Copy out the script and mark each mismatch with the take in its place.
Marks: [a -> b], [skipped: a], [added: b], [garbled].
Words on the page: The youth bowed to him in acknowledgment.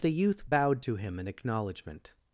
The youth bowed to him in acknowledgment.